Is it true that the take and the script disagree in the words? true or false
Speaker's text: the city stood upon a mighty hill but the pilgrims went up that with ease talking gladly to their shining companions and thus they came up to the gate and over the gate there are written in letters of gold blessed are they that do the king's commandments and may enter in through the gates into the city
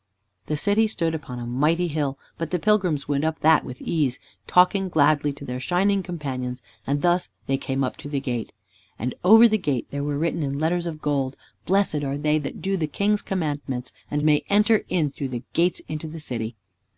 true